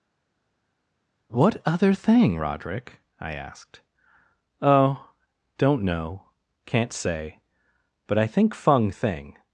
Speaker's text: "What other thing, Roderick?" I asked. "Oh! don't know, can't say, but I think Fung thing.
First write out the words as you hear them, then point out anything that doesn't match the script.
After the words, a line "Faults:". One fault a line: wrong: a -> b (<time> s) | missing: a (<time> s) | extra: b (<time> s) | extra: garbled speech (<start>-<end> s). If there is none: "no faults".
"What other thing, Roderick?" I asked. "Oh! don't know, can't say, but I think Fung thing.
Faults:
no faults